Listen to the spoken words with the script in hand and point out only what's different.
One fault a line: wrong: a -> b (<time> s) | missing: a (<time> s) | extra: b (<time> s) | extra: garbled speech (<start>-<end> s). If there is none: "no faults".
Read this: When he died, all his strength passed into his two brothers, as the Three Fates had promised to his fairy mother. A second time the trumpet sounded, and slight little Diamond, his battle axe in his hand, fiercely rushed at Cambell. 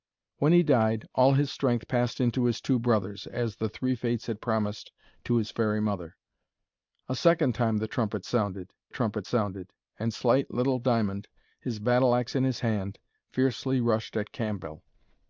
extra: trumpet sounded (8.9 s)